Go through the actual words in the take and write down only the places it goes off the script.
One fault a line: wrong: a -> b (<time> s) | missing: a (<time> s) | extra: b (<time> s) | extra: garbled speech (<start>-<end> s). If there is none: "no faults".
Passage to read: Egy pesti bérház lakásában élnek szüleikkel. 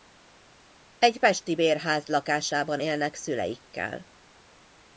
no faults